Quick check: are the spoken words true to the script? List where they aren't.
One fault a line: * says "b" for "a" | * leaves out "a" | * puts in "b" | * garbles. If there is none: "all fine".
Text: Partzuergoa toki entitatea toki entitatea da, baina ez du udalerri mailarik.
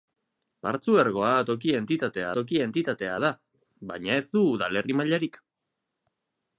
all fine